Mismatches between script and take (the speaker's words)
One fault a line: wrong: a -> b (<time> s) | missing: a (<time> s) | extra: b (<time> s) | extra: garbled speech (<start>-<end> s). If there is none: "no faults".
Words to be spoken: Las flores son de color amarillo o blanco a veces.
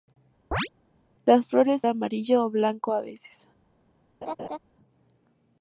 missing: son de color (1.8 s)